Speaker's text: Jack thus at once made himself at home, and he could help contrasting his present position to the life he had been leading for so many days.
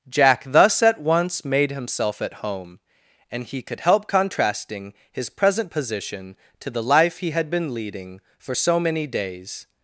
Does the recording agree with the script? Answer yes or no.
yes